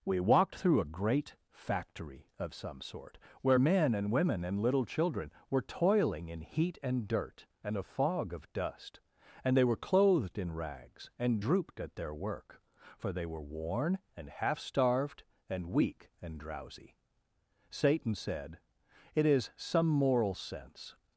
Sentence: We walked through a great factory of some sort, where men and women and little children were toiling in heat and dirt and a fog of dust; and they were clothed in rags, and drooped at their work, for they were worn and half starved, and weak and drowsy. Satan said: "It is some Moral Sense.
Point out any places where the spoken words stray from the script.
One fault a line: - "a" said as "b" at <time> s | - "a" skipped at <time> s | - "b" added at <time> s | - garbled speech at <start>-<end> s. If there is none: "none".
none